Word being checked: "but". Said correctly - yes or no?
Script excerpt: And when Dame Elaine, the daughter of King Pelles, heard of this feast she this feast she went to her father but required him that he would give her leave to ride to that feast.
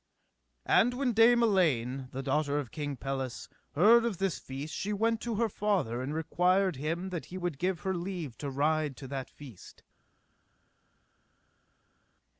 no